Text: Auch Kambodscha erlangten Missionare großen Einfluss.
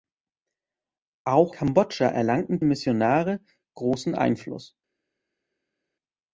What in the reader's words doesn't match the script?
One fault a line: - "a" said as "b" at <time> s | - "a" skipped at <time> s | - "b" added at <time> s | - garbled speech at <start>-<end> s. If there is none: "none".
none